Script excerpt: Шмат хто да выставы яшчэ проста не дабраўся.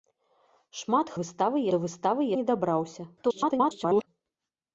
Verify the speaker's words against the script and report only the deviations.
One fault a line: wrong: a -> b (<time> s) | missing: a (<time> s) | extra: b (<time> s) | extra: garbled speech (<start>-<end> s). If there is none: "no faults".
wrong: хто -> выставы (1.2 s)
missing: яшчэ проста (2.3 s)
extra: garbled speech (3.2-4.1 s)